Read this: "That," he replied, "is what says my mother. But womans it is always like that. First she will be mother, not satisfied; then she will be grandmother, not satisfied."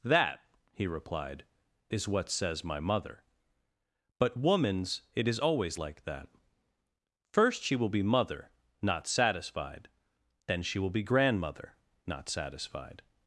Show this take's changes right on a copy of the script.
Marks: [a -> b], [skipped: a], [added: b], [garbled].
"That," he replied, "is what says my mother. But womans it is always like that. First she will be mother, not satisfied; then she will be grandmother, not satisfied."